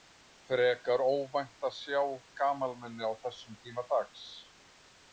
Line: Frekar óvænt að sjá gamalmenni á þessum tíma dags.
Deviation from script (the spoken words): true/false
false